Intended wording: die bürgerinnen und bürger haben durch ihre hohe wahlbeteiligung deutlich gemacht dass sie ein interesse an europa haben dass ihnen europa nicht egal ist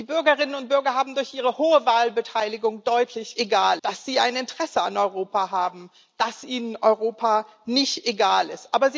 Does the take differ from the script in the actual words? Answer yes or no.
yes